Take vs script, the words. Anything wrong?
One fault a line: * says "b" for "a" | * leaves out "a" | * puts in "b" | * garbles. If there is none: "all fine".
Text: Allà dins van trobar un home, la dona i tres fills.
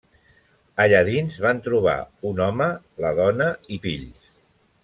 * leaves out "tres"